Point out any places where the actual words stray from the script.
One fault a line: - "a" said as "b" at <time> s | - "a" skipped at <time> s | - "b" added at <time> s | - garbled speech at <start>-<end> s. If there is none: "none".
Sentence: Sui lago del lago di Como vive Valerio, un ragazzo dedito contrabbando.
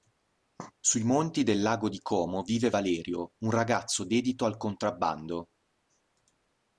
- "lago" said as "monti" at 1.0 s
- "al" added at 4.4 s